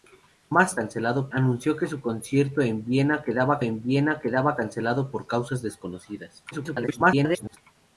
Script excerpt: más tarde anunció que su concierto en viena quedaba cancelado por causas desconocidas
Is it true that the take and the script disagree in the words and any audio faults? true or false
true